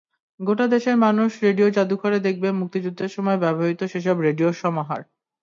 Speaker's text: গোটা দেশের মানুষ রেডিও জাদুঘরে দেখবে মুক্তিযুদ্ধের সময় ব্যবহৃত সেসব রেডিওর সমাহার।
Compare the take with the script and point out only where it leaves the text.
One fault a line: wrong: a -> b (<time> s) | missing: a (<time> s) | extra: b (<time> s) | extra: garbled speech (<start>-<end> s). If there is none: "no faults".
no faults